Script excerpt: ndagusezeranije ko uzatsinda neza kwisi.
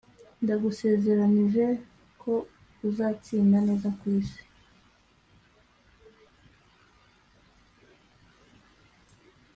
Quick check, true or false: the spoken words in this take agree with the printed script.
true